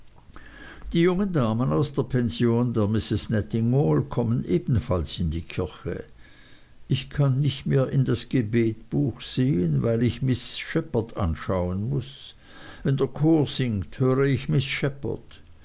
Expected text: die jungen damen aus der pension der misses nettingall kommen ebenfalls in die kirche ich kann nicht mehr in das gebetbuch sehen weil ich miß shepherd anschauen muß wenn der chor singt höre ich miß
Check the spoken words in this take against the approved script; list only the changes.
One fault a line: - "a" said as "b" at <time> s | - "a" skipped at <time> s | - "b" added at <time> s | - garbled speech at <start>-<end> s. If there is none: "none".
none